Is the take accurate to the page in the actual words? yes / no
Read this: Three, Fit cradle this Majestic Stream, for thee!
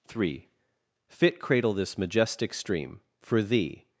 yes